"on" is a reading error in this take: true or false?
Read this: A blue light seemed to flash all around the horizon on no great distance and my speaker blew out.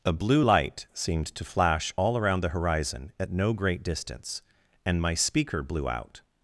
true